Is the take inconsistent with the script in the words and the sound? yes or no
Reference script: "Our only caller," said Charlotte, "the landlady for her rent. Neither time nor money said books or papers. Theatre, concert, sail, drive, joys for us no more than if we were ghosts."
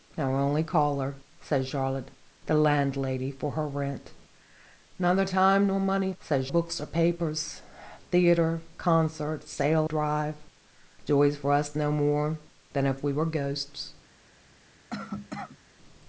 yes